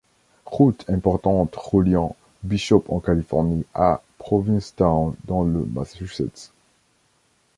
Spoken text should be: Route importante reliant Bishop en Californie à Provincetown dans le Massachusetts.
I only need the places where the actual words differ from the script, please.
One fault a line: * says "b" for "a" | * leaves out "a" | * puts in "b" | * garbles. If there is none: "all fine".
all fine